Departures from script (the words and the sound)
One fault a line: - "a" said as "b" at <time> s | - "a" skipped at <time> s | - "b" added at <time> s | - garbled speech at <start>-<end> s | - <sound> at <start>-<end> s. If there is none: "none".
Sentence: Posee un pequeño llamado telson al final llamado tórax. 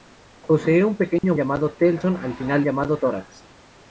- dropout at 1.2-1.2 s